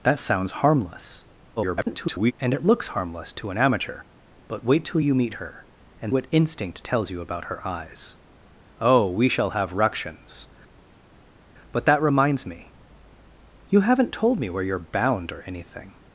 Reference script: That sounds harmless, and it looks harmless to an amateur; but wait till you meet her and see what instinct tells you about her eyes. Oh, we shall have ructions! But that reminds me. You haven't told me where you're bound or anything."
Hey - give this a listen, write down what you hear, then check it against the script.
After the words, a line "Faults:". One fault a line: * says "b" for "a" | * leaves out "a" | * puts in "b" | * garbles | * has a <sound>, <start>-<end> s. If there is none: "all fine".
That sounds harmless, [garbled] and it looks harmless to an amateur; but wait till you meet her and what instinct tells you about her eyes. Oh, we shall have ructions! But that reminds me. You haven't told me where you're bound or anything."
Faults:
* garbles
* leaves out "see"